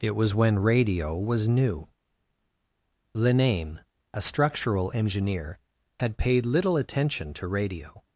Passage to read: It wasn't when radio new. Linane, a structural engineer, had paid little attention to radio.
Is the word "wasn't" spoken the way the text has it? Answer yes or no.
no